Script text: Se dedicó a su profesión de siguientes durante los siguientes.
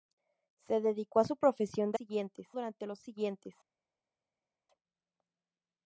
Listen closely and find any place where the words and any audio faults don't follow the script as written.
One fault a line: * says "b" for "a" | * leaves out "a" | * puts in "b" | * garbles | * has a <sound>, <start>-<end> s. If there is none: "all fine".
all fine